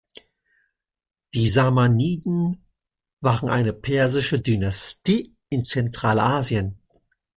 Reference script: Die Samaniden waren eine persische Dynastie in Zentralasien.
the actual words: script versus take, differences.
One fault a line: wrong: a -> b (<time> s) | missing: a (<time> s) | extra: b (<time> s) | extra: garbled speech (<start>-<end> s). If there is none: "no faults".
no faults